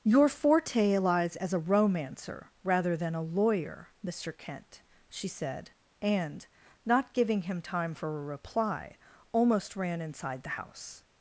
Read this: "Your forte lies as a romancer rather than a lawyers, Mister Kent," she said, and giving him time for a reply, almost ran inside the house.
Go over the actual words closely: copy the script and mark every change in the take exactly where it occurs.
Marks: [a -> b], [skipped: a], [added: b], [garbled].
"Your forte lies as a romancer rather than a [lawyers, -> lawyer] Mister Kent," she said, and [added: not] giving him time for a reply, almost ran inside the house.